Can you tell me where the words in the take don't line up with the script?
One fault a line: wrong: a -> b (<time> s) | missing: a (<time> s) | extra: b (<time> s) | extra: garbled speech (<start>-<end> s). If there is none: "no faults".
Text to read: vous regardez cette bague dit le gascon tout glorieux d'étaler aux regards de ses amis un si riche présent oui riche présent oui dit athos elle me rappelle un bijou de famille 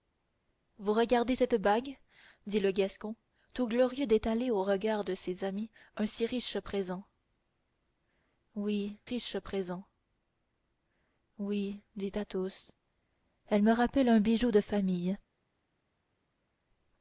no faults